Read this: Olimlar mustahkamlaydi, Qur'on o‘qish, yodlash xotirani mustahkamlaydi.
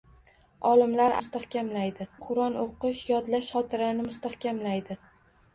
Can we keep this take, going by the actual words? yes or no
yes